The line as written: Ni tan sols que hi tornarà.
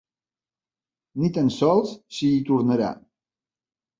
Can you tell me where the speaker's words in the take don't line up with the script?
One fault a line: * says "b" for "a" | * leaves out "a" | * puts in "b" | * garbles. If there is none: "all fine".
* says "si" for "que"